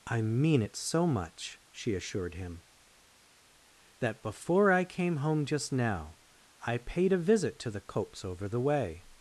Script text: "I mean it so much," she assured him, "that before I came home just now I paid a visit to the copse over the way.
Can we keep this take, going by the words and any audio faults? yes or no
yes